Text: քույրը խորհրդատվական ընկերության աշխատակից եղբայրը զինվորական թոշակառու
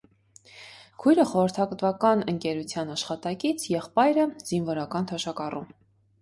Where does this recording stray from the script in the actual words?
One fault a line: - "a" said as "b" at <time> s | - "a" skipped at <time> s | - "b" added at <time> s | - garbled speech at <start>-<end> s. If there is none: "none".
none